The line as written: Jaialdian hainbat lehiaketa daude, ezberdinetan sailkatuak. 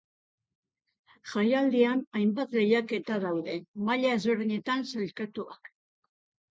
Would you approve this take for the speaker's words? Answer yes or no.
no